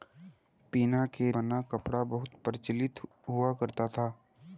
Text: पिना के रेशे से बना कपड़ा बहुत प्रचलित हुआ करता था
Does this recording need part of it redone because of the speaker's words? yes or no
yes